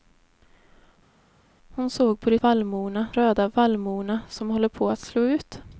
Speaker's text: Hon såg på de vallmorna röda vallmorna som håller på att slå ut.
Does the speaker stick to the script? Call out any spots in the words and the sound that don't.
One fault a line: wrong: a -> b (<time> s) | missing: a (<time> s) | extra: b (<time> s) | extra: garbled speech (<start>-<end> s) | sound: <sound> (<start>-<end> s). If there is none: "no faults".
no faults